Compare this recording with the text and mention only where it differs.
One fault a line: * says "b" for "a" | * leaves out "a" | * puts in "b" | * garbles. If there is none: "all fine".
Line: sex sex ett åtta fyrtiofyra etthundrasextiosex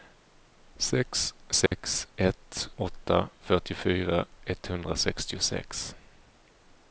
all fine